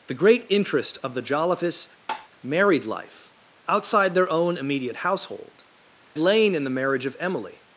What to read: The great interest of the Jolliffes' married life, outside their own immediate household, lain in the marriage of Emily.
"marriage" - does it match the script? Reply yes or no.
yes